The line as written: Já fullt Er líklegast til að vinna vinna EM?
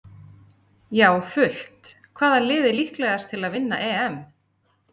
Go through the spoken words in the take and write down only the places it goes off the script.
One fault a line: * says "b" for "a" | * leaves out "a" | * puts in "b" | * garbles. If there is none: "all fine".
* puts in "Hvaða lið"
* leaves out "vinna"